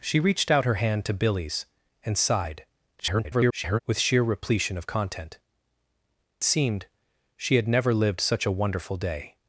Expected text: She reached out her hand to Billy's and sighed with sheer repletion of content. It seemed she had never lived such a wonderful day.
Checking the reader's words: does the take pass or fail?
fail